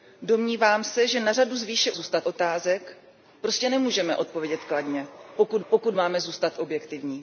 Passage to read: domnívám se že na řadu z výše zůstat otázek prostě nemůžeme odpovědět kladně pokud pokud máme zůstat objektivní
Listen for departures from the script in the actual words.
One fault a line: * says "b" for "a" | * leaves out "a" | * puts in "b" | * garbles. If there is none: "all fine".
all fine